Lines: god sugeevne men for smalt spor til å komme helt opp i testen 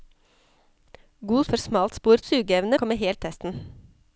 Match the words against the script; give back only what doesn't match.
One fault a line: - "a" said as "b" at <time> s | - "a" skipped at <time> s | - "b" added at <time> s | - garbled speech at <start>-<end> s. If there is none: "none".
- "sugeevne men" skipped at 1.4 s
- "til" said as "sugeevne" at 2.2 s
- "opp" skipped at 3.2 s